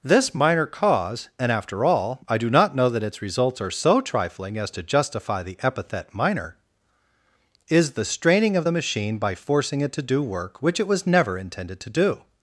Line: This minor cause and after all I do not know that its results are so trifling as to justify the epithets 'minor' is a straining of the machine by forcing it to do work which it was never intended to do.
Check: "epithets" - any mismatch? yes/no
yes